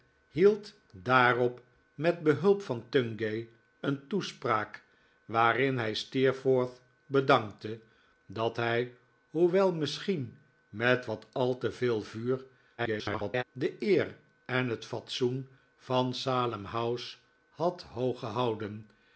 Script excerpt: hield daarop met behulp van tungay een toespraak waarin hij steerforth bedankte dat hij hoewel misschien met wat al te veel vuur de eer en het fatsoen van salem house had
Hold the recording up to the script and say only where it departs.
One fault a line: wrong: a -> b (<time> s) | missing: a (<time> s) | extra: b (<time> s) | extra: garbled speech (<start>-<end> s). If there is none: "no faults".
extra: garbled speech (12.8-13.4 s)